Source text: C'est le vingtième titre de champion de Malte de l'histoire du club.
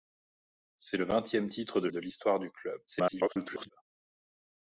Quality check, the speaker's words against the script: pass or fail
fail